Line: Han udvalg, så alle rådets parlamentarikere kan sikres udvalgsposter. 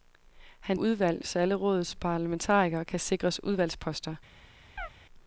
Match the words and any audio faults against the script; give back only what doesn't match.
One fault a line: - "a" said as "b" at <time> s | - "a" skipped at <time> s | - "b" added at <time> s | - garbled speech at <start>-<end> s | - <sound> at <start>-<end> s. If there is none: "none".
- chirp at 4.8-4.9 s